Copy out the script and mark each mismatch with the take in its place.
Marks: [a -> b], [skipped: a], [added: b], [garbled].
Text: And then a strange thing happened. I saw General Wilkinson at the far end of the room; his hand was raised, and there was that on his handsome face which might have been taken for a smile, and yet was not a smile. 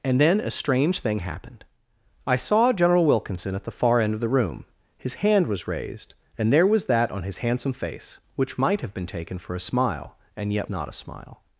And then a strange thing happened. I saw General Wilkinson at the far end of the room; his hand was raised, and there was that on his handsome face which might have been taken for a smile, and yet [skipped: was] not a smile.